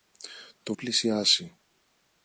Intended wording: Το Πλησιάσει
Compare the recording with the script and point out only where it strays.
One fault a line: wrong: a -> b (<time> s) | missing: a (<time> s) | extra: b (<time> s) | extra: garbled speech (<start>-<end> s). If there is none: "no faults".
no faults